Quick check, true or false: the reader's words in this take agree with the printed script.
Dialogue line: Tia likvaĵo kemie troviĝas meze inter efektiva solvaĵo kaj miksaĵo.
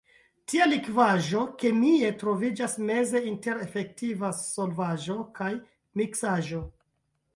true